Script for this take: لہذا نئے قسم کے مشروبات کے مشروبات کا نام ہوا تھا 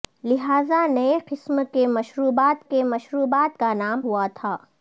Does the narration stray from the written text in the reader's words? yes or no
no